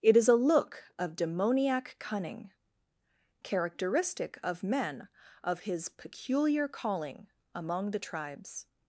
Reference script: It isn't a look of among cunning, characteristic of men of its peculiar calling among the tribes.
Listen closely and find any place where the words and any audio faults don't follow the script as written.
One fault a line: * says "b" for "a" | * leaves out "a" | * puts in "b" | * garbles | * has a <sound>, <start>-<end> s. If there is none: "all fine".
* says "is" for "isn't"
* says "demoniac" for "among"
* says "his" for "its"